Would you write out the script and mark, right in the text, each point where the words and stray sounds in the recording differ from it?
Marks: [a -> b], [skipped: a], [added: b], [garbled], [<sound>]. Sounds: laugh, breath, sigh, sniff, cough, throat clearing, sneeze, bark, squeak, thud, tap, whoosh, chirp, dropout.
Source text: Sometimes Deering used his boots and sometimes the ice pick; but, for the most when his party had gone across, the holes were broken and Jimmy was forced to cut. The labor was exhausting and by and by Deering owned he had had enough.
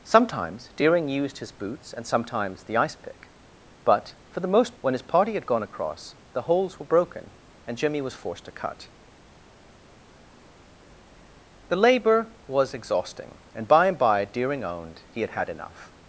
Sometimes Deering used his boots and sometimes the ice pick; but, for the most when his party had gone across, the holes were broken and Jimmy was forced to cut. The labor was exhausting and by and by Deering owned he had had enough.